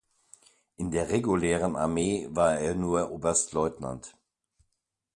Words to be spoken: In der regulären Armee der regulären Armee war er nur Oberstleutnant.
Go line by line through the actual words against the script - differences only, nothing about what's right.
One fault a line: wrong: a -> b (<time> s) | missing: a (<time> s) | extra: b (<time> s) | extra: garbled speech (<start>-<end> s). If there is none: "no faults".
missing: der regulären Armee (2.3 s)